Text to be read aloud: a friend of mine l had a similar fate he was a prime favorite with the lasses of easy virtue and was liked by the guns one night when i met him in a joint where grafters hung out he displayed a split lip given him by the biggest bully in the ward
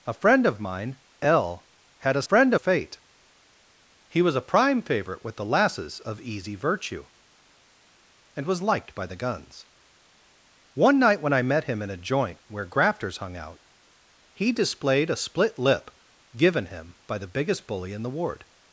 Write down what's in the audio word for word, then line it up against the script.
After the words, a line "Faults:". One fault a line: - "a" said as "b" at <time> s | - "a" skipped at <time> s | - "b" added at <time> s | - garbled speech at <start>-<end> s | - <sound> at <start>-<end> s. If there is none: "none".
a friend of mine l had a friend fate he was a prime favorite with the lasses of easy virtue and was liked by the guns one night when i met him in a joint where grafters hung out he displayed a split lip given him by the biggest bully in the ward
Faults:
- "similar" said as "friend" at 2.2 s